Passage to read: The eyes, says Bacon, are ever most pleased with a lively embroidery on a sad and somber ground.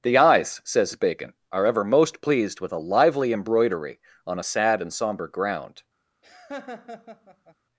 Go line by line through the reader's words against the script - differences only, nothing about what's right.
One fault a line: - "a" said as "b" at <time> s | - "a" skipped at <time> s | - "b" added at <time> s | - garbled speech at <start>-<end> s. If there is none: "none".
none